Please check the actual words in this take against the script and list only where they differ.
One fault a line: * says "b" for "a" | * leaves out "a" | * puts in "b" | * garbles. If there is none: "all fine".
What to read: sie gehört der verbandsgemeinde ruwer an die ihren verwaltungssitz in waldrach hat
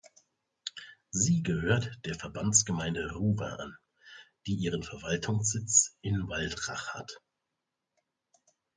all fine